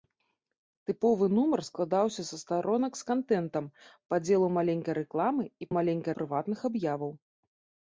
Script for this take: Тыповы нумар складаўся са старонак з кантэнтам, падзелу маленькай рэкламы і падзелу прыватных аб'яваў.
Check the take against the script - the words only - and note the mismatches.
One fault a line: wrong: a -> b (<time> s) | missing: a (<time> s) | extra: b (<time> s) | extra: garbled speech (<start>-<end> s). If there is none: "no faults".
wrong: падзелу -> маленькай (5.8 s)